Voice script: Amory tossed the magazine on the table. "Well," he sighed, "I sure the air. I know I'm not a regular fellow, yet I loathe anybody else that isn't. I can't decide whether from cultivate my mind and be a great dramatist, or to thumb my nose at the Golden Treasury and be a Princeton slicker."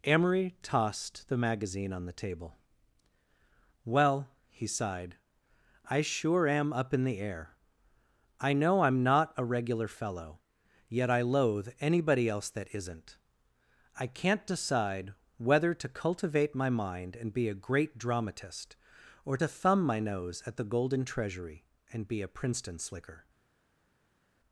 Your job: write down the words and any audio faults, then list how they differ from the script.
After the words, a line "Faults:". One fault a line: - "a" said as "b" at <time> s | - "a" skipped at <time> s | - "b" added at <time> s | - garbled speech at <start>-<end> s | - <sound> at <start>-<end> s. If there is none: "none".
Amory tossed the magazine on the table. "Well," he sighed, "I sure am up in the air. I know I'm not a regular fellow, yet I loathe anybody else that isn't. I can't decide whether to cultivate my mind and be a great dramatist, or to thumb my nose at the Golden Treasury and be a Princeton slicker."
Faults:
- "am up in" added at 6.5 s
- "from" said as "to" at 15.8 s